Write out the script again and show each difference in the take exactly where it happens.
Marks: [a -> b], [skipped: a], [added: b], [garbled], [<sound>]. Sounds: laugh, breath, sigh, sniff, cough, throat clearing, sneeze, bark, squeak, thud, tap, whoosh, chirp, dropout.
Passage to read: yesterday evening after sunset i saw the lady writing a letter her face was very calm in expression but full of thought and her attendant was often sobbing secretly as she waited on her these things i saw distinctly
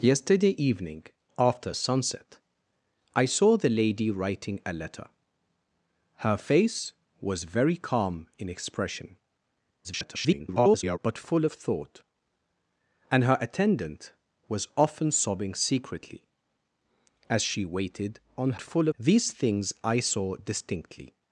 yesterday evening after sunset i saw the lady writing a letter her face was very calm in expression [garbled] but full of thought and her attendant was often sobbing secretly as she waited on [her -> full] these things i saw distinctly